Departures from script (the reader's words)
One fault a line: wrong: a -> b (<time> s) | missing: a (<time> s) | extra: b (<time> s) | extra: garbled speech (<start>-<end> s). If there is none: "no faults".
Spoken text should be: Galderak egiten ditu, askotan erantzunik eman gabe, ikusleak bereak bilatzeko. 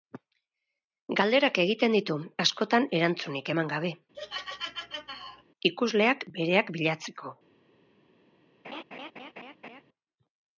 no faults